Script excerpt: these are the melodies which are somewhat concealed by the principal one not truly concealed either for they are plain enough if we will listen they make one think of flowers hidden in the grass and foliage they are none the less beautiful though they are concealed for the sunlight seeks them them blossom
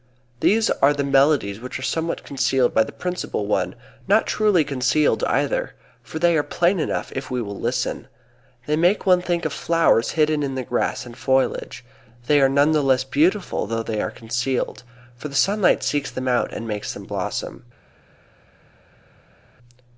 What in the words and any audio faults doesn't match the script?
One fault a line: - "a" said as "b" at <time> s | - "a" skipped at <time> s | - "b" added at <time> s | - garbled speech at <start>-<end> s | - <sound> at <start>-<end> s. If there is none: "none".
- "out and makes" added at 16.3 s